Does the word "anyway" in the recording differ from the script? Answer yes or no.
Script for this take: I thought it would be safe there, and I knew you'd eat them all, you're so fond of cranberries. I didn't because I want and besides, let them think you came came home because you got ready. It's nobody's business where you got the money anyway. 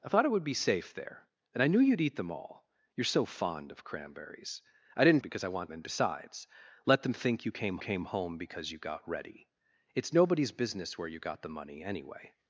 no